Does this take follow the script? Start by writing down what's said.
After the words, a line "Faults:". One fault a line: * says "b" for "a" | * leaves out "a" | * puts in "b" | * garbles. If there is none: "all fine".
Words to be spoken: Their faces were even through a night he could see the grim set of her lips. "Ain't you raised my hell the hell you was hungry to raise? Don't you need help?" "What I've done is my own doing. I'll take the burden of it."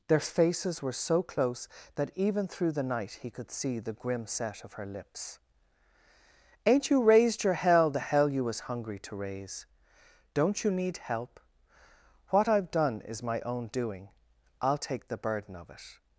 Their faces were so close that even through the night he could see the grim set of her lips. "Ain't you raised your hell the hell you was hungry to raise? Don't you need help?" "What I've done is my own doing. I'll take the burden of it."
Faults:
* puts in "so close that"
* says "the" for "a"
* says "your" for "my"